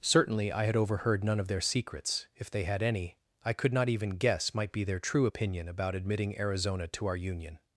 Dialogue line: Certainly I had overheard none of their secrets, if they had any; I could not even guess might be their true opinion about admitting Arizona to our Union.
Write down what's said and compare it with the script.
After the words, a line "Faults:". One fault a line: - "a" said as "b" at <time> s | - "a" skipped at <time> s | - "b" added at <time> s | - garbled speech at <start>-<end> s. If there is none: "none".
Certainly I had overheard none of their secrets, if they had any; I could not even guess might be their true opinion about admitting Arizona to our Union.
Faults:
none